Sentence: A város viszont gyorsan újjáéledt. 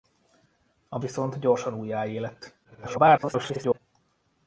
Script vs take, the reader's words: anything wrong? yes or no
yes